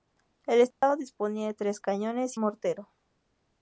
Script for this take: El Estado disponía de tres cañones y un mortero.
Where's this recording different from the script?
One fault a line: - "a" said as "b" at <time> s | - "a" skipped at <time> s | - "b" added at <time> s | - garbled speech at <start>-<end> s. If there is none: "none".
- "un" skipped at 2.4 s